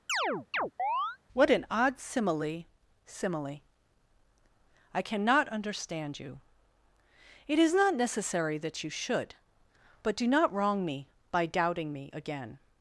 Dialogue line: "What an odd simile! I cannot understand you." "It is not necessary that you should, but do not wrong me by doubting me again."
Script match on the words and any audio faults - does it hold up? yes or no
no